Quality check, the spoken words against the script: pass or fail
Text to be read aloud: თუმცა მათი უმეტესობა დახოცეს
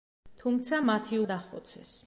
fail